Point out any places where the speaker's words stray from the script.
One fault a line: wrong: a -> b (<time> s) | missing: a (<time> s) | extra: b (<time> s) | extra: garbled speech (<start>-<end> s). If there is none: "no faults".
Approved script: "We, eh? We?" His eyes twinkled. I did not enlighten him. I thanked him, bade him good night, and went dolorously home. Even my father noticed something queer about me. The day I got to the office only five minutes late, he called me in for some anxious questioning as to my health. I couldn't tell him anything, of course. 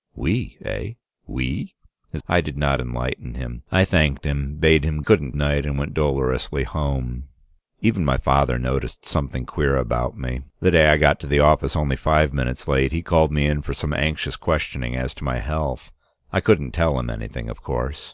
missing: eyes twinkled (2.2 s)
wrong: good -> couldn't (5.0 s)